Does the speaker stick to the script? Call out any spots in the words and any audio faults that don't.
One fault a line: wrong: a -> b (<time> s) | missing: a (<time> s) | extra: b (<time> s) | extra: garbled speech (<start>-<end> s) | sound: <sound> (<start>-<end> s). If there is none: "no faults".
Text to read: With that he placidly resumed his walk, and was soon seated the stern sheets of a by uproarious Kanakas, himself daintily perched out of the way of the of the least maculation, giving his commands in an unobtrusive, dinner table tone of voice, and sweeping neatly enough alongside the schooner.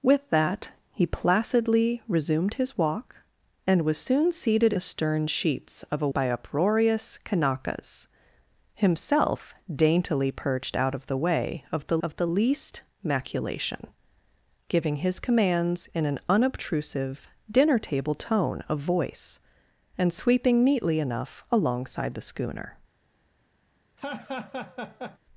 sound: laugh (24.0-25.2 s)